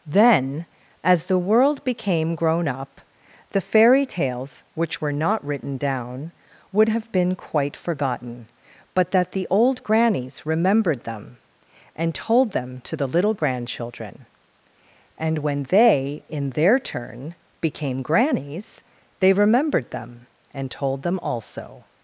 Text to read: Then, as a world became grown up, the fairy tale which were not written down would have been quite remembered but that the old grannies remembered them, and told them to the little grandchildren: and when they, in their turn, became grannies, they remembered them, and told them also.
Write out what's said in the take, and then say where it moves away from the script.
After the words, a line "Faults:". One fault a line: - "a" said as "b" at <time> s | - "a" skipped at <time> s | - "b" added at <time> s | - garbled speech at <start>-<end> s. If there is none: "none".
Then, as the world became grown up, the fairy tales which were not written down would have been quite forgotten but that the old grannies remembered them, and told them to the little grandchildren: and when they, in their turn, became grannies, they remembered them, and told them also.
Faults:
- "a" said as "the" at 1.2 s
- "tale" said as "tales" at 4.0 s
- "remembered" said as "forgotten" at 7.8 s